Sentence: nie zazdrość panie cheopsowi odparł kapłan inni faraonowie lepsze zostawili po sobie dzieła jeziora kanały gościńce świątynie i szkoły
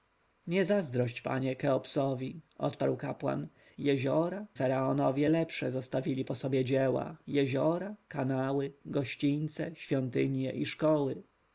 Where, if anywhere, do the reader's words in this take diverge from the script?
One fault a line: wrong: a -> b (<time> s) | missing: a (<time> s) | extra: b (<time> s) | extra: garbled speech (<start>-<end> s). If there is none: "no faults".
wrong: inni -> jeziora (3.8 s)